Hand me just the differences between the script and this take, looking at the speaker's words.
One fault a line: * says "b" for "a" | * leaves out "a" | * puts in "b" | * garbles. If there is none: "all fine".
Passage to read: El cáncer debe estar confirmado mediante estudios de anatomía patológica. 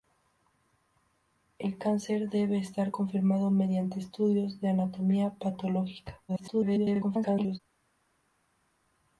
* garbles